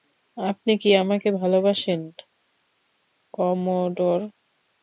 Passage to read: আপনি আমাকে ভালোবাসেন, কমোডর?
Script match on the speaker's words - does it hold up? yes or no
no